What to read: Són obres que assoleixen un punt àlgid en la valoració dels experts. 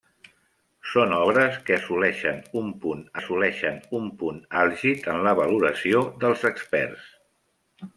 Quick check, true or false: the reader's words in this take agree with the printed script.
false